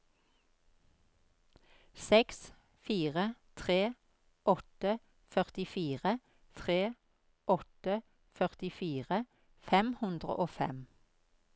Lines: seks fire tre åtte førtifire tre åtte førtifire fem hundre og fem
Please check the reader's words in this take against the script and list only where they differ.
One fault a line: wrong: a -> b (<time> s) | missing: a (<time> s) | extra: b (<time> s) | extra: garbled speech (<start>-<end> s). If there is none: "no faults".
no faults